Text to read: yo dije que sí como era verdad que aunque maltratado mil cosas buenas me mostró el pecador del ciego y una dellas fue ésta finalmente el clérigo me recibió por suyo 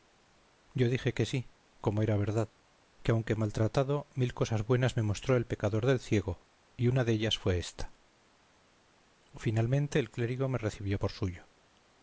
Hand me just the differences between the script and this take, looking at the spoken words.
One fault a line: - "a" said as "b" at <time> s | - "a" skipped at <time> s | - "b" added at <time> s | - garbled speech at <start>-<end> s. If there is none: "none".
none